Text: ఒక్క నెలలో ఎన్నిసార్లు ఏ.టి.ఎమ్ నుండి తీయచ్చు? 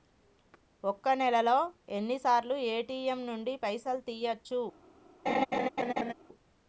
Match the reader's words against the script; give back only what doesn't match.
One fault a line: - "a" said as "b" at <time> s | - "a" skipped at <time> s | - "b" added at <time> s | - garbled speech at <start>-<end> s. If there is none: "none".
- "పైసలు" added at 3.6 s